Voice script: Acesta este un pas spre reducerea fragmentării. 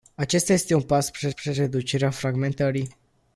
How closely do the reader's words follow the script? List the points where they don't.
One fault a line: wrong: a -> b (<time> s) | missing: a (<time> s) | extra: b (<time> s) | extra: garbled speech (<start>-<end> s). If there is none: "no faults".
extra: spre (1.3 s)